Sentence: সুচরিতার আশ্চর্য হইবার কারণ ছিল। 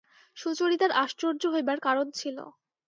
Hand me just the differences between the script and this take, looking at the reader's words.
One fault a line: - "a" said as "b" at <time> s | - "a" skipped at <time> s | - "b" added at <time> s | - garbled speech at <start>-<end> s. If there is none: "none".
none